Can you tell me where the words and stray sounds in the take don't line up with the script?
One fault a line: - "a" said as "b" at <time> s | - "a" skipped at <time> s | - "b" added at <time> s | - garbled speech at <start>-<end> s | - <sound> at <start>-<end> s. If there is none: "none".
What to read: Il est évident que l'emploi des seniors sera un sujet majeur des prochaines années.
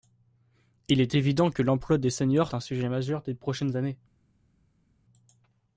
- "sera" skipped at 2.5 s